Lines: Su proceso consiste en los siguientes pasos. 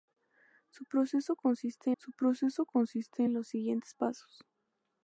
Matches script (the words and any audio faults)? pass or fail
fail